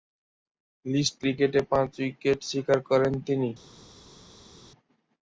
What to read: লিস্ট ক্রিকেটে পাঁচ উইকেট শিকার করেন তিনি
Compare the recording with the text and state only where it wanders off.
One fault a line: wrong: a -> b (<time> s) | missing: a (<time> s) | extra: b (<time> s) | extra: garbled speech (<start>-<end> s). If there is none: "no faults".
no faults